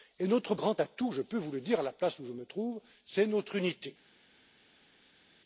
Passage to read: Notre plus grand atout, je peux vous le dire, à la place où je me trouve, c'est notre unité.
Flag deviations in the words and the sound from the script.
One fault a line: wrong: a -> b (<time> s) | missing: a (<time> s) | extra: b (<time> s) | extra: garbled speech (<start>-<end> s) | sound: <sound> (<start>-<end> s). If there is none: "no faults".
missing: plus (0.6 s)